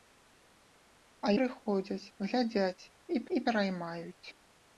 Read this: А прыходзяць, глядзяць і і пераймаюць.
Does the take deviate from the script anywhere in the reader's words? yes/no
no